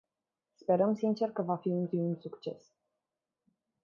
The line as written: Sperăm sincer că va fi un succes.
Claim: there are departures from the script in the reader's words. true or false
true